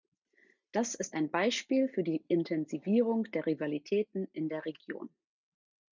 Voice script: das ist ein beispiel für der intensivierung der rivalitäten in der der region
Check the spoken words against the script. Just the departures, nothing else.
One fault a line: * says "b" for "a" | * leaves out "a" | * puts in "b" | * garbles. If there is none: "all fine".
* says "die" for "der"
* leaves out "der"